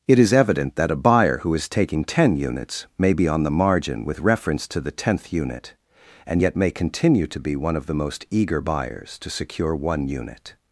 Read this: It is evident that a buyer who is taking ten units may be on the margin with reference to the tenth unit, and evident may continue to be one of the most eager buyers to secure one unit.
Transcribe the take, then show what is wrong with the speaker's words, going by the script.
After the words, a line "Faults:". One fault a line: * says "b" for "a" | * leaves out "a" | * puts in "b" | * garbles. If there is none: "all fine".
It is evident that a buyer who is taking ten units may be on the margin with reference to the tenth unit, and yet may continue to be one of the most eager buyers to secure one unit.
Faults:
* says "yet" for "evident"